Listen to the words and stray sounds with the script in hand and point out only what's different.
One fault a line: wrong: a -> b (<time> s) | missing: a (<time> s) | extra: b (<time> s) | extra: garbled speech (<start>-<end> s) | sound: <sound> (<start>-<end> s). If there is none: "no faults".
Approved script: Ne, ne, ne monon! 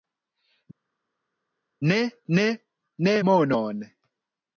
no faults